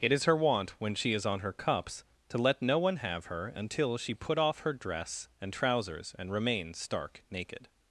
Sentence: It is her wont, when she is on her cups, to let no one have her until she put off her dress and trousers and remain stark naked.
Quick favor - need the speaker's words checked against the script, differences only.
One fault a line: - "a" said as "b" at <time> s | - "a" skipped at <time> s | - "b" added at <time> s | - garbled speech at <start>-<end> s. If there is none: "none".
none